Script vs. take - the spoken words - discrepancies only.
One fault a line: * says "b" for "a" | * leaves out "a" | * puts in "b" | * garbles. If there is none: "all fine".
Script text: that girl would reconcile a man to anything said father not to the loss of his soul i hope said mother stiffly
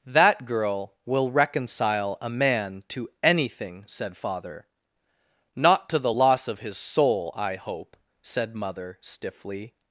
* says "will" for "would"